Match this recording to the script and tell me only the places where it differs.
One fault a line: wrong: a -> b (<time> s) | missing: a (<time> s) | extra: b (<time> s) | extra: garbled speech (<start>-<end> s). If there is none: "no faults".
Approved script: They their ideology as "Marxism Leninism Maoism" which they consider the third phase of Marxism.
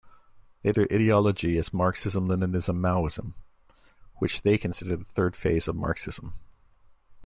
no faults